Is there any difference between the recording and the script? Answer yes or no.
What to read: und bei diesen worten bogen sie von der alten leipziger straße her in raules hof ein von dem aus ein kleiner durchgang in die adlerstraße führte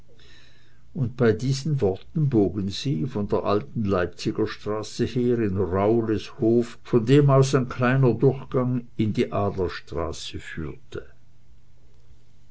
yes